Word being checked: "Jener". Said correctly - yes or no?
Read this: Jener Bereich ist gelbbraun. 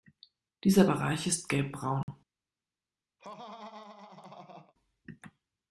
no